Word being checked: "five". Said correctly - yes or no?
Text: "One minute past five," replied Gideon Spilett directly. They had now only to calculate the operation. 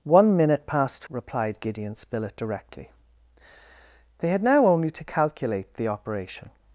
no